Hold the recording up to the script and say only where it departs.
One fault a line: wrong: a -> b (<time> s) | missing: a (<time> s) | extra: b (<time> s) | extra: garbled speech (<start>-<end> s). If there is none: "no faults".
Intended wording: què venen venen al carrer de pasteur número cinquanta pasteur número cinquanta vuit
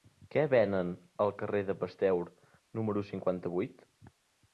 missing: venen (0.9 s)
missing: pasteur número cinquanta (3.5 s)